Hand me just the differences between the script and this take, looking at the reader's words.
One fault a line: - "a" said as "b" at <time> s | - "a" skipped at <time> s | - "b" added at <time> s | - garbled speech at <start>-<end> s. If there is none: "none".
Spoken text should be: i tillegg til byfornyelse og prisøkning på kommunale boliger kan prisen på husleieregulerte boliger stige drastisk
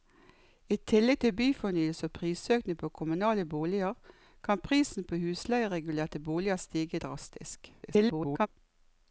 - garbled speech at 7.8-8.5 s